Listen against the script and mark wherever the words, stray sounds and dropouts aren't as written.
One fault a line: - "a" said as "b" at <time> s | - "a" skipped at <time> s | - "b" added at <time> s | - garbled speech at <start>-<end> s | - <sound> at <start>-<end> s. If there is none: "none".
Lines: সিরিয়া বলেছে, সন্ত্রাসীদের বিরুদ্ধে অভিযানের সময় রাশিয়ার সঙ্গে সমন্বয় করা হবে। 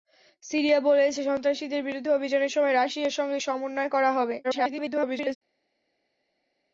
- garbled speech at 4.4-5.4 s